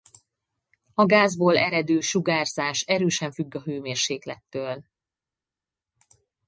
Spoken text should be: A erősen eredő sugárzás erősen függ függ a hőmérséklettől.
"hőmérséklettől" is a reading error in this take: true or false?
false